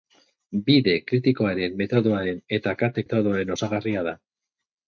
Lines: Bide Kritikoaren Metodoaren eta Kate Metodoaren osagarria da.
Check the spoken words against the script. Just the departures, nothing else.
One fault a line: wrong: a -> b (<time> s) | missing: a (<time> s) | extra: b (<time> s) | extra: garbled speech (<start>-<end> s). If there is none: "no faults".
no faults